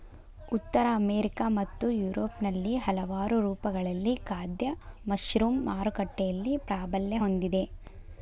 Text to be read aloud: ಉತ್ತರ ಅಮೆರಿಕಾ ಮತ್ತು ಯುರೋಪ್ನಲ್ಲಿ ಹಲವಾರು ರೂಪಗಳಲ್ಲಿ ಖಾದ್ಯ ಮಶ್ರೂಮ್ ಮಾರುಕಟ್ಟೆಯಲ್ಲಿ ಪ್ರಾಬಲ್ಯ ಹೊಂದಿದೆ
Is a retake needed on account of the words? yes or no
no